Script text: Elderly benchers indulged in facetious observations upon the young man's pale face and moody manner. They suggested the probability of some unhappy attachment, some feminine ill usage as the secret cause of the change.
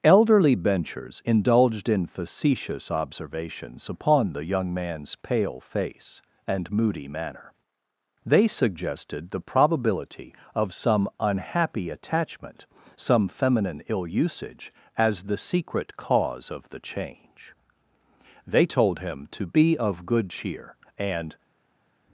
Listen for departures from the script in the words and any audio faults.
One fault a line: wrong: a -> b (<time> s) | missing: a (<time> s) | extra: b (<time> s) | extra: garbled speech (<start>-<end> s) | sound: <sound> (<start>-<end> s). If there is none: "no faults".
extra: They told him to be of good cheer and (18.5 s)